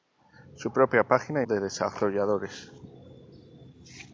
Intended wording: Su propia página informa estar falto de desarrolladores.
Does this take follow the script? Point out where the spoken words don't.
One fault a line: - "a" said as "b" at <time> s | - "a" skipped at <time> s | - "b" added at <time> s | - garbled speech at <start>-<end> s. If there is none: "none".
- "informa estar falto" skipped at 1.4 s